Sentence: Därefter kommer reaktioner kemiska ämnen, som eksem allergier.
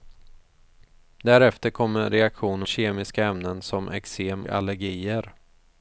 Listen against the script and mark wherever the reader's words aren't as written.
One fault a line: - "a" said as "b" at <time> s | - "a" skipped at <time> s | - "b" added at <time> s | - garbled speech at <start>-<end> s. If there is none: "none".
none